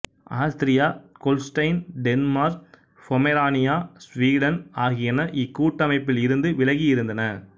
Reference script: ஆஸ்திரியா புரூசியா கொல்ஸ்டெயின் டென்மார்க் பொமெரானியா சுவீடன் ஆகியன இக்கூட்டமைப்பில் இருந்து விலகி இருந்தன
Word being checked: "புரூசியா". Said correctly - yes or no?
no